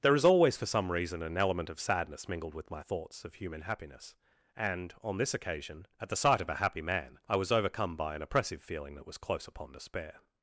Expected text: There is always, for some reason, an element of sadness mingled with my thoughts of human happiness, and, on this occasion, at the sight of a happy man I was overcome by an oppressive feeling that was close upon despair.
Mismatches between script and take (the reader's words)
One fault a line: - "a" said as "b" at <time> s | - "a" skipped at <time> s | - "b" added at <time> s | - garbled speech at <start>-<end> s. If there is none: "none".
none